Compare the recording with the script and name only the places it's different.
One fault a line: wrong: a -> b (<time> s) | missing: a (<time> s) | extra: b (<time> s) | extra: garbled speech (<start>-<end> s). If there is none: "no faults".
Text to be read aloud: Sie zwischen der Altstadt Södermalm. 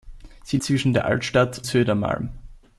no faults